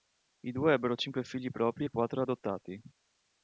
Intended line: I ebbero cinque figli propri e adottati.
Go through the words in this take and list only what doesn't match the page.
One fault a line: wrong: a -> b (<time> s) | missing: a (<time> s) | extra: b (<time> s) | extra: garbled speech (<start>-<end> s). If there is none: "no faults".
extra: due (0.5 s)
extra: quattro (1.9 s)